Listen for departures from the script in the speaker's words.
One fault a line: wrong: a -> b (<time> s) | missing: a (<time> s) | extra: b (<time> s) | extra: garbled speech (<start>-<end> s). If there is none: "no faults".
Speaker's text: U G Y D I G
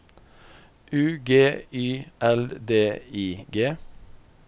extra: L (2.2 s)